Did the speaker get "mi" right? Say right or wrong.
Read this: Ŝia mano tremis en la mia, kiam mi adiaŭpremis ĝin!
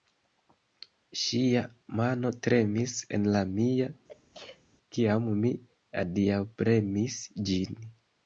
right